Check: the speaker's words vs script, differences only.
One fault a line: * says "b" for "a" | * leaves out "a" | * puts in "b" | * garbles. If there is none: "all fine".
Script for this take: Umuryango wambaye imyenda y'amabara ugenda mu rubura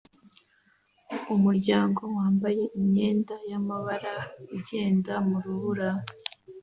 all fine